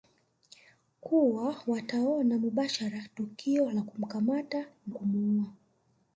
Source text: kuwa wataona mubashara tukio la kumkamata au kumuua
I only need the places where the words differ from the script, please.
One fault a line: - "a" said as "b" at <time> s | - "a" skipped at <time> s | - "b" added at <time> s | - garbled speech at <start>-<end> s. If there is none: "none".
- "au" skipped at 4.7 s